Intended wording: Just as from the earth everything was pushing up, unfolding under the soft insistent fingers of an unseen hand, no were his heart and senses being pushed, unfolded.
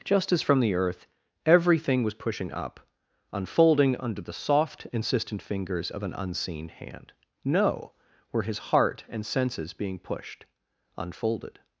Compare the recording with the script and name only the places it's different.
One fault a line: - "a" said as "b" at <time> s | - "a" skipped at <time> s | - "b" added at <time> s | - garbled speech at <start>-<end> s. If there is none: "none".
none